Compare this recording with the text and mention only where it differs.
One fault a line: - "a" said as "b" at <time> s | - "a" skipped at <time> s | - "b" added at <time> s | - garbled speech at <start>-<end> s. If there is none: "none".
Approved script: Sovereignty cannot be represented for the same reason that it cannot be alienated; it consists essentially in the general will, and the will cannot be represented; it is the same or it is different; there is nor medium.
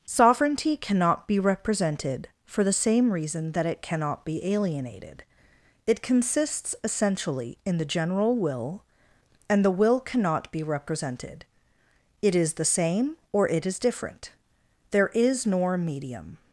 none